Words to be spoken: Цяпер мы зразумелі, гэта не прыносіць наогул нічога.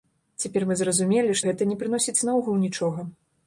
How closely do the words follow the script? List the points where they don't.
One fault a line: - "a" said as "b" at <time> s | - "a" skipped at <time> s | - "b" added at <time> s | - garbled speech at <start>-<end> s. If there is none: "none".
none